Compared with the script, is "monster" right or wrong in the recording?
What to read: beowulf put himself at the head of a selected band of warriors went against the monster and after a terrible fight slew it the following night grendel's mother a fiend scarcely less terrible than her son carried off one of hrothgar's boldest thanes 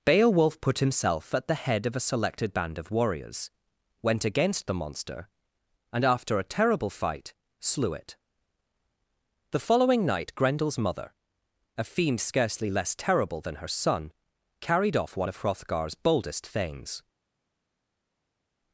right